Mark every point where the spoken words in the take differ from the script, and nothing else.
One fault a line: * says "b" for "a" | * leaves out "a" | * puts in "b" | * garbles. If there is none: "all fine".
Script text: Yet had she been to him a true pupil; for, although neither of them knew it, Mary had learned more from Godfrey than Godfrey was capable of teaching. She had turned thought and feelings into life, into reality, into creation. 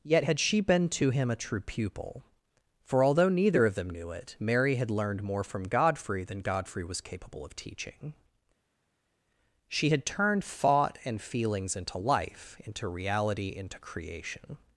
all fine